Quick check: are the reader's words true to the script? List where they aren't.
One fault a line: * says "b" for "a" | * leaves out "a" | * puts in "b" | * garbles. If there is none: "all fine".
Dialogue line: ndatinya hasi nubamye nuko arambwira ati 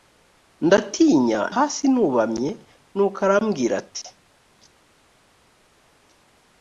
all fine